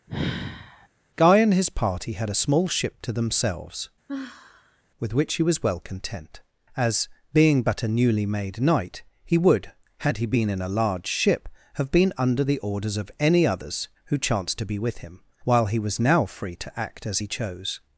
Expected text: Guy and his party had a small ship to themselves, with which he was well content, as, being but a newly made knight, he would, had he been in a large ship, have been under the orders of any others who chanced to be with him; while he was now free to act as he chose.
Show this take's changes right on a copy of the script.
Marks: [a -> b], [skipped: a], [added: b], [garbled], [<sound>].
[sigh] Guy and his party had a small ship to themselves, [sigh] with which he was well content, as, being but a newly made knight, he would, had he been in a large ship, have been under the orders of any others who chanced to be with him; while he was now free to act as he chose.